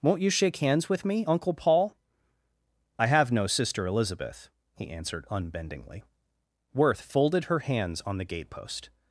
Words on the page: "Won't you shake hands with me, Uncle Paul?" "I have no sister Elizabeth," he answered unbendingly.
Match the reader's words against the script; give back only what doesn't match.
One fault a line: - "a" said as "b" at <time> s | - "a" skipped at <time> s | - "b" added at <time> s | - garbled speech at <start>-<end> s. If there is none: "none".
- "Worth folded her hands on the gatepost" added at 6.7 s